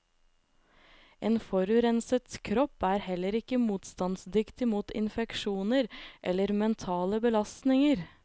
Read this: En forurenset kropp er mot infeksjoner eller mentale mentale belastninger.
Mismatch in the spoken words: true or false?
true